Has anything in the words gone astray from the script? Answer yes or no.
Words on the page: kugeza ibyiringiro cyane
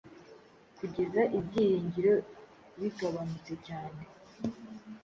yes